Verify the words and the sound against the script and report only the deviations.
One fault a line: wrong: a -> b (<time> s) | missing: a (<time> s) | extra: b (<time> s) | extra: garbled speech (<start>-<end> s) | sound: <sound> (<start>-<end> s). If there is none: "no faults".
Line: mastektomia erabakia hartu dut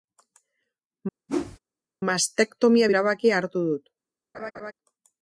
sound: whoosh (1.3-1.6 s)
sound: laugh (4.3-4.7 s)